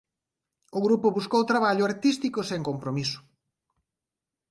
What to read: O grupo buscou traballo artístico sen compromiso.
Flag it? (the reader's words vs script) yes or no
no